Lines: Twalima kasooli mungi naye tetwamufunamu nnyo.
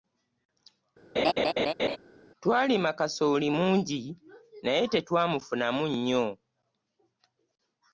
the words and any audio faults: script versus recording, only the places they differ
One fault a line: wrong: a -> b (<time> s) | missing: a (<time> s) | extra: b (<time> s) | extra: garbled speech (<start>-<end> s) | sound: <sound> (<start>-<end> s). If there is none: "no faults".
sound: laugh (1.2-2.0 s)